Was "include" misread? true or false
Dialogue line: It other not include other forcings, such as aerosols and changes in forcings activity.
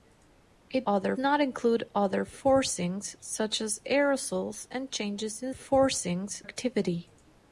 false